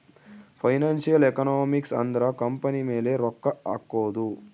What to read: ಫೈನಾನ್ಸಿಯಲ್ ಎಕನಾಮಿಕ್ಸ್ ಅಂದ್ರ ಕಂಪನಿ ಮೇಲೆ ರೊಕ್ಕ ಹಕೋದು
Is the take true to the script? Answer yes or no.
yes